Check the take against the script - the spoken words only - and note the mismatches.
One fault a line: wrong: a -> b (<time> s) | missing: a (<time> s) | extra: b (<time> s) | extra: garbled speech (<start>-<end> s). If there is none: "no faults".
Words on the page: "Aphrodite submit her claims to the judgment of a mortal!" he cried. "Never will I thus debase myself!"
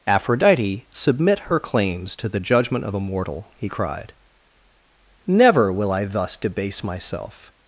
no faults